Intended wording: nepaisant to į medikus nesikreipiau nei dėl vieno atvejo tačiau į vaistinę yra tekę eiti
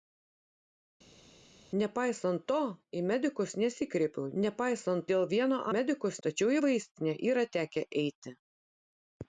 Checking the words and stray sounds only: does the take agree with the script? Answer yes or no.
no